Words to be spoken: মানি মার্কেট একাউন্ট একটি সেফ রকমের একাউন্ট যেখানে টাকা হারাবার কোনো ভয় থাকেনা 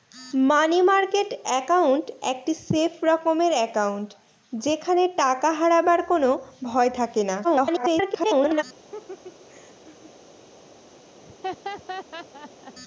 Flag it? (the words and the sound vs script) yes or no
yes